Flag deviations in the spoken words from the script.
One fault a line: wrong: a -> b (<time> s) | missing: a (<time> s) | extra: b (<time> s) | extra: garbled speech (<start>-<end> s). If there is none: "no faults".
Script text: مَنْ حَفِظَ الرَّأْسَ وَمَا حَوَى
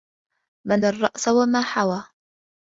missing: حَفِظَ (0.8 s)